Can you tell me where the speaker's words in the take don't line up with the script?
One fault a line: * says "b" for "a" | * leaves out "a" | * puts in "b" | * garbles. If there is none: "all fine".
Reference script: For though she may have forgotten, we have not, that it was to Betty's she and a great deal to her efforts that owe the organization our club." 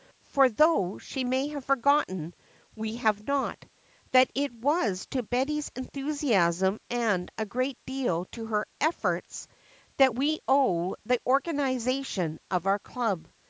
* says "enthusiasm" for "she"
* puts in "we"
* puts in "of"